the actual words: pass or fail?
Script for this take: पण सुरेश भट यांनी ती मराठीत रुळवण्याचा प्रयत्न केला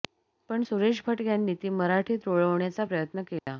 pass